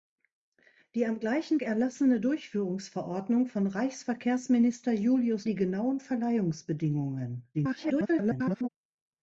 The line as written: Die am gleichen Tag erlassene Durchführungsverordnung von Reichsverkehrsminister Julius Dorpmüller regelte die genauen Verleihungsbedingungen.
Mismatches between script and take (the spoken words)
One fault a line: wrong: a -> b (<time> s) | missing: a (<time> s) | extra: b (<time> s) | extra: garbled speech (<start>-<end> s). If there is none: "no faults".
missing: Tag (1.6 s)
missing: Dorpmüller regelte (5.5 s)
extra: garbled speech (7.5-8.7 s)